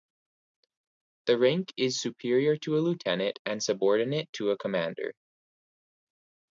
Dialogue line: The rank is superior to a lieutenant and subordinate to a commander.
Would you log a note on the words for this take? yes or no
no